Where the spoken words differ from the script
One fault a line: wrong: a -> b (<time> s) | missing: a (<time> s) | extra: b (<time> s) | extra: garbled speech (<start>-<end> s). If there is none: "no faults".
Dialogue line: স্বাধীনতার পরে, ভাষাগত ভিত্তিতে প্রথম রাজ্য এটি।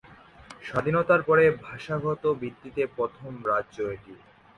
no faults